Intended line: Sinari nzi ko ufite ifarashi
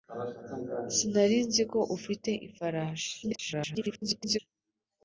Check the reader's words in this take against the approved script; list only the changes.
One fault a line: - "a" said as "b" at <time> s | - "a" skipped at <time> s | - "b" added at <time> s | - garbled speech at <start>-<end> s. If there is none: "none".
- garbled speech at 3.2-4.4 s